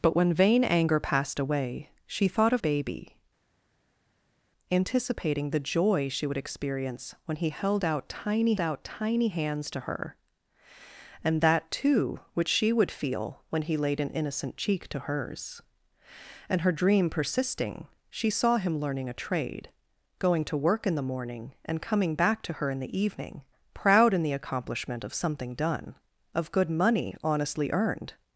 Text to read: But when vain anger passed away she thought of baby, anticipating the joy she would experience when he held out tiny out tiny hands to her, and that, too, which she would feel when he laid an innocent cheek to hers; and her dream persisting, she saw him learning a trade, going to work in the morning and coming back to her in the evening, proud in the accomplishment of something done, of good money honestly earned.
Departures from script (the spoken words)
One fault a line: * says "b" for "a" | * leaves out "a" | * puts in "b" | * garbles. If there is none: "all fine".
all fine